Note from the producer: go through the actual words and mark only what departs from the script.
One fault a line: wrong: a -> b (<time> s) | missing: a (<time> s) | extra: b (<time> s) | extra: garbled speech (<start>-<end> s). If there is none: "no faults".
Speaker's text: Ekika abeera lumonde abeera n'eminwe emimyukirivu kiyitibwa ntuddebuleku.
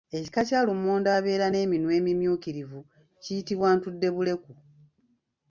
wrong: abeera -> kya (0.5 s)